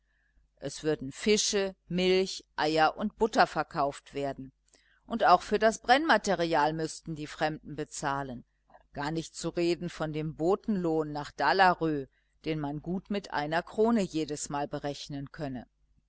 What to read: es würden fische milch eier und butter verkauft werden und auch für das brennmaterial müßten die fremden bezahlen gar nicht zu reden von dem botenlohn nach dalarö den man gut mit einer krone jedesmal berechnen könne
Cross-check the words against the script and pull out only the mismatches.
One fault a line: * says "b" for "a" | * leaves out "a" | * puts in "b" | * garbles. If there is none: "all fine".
all fine